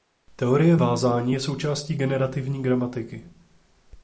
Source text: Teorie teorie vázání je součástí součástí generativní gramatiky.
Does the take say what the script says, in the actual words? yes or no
no